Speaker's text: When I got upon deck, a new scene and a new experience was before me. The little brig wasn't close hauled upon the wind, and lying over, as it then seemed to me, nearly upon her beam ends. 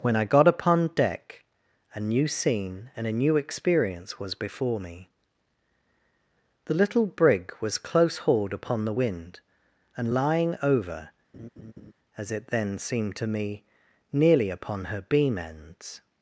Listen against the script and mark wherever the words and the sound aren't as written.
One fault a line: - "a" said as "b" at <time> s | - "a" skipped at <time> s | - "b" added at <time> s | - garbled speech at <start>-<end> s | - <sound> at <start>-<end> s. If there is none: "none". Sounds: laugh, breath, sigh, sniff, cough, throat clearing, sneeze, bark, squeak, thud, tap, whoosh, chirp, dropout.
- "wasn't" said as "was" at 7.6 s
- laugh at 11.3-11.9 s